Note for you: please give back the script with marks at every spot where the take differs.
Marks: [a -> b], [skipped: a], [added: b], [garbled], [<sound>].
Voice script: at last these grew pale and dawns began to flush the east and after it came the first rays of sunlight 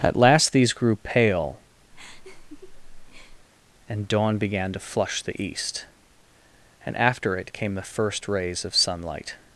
at last these grew pale [laugh] and [dawns -> dawn] began to flush the east and after it came the first rays of sunlight